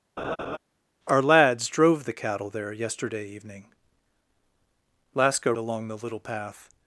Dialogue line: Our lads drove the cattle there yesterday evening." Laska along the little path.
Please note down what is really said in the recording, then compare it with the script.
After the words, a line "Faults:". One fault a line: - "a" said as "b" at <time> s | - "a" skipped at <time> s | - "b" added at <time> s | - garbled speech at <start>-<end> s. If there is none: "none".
Our lads drove the cattle there yesterday evening." Laska along the little path.
Faults:
none